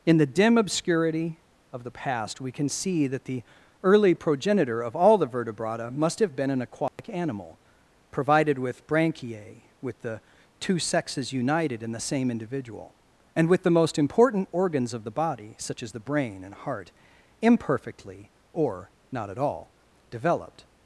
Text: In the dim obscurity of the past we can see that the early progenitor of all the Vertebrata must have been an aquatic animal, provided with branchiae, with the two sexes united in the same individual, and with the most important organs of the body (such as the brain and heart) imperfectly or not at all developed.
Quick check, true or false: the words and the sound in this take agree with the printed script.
false